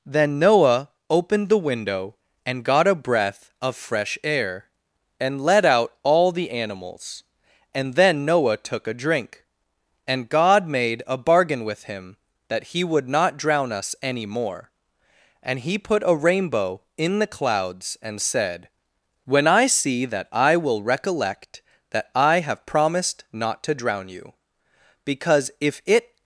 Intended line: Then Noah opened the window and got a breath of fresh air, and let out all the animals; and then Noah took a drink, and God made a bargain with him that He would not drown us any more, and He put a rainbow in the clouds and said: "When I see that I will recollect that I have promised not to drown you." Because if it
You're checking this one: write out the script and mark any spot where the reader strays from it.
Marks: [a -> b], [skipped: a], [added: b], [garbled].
Then Noah opened the window and got a breath of fresh air, and let out all the animals; and then Noah took a drink, and God made a bargain with him that He would not drown us any more, and He put a rainbow in the clouds and said: "When I see that I will recollect that I have promised not to drown you." Because if it